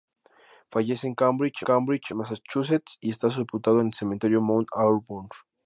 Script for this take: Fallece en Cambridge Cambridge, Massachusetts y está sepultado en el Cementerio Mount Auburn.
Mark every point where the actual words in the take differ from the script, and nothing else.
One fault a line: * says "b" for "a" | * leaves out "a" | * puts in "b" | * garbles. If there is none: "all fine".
all fine